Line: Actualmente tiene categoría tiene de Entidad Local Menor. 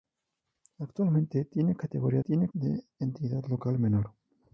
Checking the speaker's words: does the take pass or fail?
pass